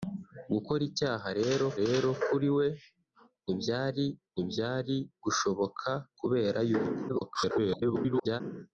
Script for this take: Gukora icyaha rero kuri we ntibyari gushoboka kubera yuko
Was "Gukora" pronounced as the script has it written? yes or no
yes